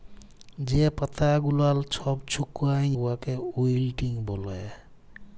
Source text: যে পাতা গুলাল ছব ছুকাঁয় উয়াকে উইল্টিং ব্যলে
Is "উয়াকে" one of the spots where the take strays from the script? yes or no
no